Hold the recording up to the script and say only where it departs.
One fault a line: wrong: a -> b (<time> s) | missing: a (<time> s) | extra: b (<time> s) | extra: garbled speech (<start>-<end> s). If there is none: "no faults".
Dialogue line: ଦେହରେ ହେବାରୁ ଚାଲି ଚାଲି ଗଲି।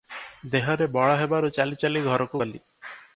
extra: ବଳ (0.9 s)
extra: ଘରକୁ (2.0 s)